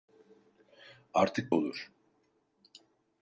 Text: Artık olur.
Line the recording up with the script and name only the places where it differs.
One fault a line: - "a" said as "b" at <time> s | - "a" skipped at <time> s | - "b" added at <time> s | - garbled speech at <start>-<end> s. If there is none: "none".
none